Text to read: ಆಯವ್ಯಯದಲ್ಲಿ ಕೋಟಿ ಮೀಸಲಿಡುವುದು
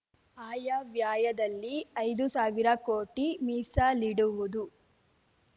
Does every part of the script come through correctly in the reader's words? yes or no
no